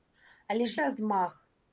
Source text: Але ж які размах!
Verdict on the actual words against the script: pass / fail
fail